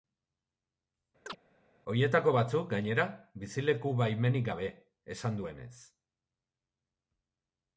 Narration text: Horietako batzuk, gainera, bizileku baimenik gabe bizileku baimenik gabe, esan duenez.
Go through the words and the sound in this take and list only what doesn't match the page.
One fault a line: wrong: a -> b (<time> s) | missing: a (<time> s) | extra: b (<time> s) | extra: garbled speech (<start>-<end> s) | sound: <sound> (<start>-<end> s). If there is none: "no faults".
sound: chirp (1.3-1.4 s)
missing: bizileku baimenik gabe (4.7 s)